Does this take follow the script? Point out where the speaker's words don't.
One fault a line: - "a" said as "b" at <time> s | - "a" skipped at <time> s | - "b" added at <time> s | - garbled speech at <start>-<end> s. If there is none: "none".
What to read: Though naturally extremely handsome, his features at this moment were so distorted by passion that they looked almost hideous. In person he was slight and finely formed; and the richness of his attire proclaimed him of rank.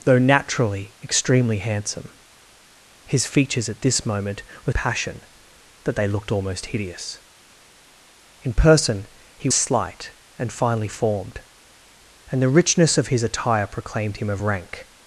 - "so distorted by" skipped at 4.7 s
- "was" skipped at 9.5 s